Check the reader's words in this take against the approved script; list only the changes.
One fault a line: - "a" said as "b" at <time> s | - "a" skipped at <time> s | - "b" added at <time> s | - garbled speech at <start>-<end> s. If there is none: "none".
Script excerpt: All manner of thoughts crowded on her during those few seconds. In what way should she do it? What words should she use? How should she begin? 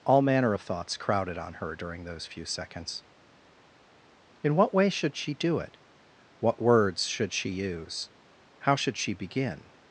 none